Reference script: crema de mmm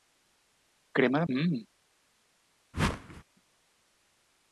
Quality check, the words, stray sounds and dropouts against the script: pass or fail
fail